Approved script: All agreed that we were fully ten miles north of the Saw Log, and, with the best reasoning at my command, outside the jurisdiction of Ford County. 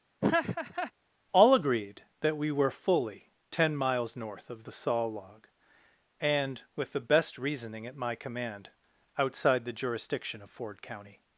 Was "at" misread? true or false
false